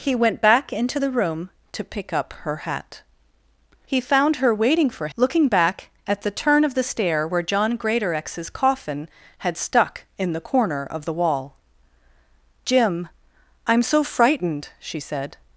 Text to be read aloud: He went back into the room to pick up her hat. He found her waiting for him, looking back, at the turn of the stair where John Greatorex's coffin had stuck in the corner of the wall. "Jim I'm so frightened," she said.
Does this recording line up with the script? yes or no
no